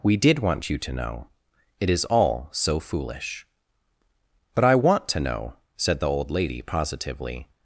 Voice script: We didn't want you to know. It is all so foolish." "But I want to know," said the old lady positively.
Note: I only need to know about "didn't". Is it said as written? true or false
false